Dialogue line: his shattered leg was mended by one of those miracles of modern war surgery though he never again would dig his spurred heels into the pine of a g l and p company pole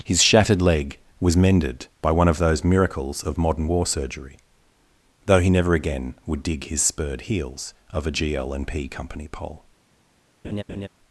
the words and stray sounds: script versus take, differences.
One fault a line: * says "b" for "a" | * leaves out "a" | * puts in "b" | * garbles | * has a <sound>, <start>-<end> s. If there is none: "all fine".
* leaves out "into the pine"
* has a laugh, 10.4-10.9 s